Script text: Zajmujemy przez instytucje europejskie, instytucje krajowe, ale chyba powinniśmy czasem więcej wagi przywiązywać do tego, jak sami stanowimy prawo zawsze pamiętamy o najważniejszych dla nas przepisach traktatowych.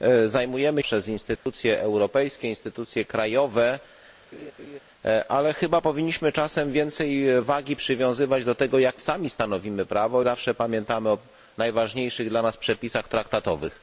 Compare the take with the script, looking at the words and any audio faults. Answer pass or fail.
fail